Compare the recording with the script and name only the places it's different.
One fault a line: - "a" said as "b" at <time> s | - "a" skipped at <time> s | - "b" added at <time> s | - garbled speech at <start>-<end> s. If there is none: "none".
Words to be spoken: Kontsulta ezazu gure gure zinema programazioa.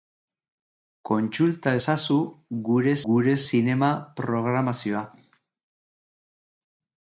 none